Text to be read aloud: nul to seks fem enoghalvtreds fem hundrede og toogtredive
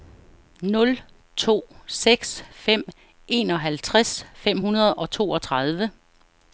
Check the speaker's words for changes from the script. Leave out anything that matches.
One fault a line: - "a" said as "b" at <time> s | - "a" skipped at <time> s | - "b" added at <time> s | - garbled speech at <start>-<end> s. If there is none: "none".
none